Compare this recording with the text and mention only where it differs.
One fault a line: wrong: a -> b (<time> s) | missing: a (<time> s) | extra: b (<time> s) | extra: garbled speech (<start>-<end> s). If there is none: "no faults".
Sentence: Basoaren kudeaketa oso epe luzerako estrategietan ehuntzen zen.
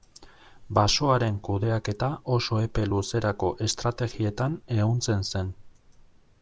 no faults